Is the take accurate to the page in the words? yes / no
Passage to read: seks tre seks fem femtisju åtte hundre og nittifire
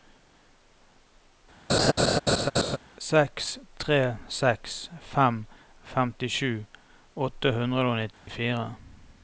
yes